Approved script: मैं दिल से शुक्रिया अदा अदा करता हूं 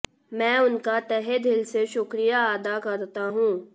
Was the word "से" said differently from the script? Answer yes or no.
no